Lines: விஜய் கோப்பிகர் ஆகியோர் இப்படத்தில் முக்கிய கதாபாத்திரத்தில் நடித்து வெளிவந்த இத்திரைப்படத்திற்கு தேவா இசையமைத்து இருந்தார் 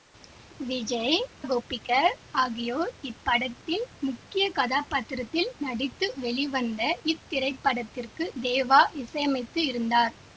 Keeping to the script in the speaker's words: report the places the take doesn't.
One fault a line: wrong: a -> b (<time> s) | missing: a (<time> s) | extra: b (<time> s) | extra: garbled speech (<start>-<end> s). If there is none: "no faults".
no faults